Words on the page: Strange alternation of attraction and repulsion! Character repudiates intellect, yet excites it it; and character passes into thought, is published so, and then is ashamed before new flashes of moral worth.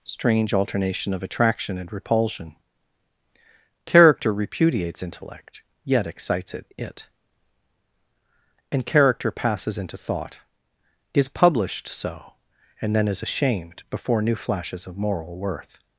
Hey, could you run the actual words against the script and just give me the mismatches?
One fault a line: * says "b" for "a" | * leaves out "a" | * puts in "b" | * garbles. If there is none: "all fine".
all fine